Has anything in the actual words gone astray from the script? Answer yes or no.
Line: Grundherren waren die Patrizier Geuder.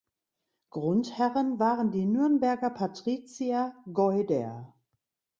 yes